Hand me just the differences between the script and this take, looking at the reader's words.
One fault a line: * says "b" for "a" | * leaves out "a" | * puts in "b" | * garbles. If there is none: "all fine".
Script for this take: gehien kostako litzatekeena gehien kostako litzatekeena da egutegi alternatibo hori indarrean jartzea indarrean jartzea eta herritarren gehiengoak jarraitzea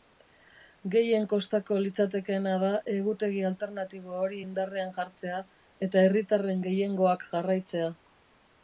* leaves out "gehien kostako litzatekeena"
* leaves out "indarrean jartzea"